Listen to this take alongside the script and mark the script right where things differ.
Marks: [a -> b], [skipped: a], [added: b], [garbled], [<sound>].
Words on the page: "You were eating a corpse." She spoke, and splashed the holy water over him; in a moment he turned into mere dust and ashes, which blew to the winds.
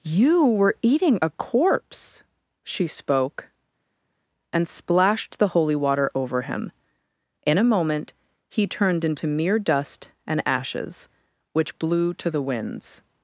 "You were eating a corpse." She spoke, and splashed the holy water over him; in a moment he turned into mere dust and ashes, which blew to the winds.